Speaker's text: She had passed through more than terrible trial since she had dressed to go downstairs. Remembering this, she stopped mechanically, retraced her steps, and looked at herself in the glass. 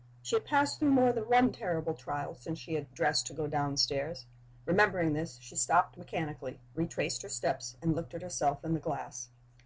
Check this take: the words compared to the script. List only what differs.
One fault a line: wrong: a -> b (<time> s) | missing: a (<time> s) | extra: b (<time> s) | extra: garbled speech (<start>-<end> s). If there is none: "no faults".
extra: one (1.3 s)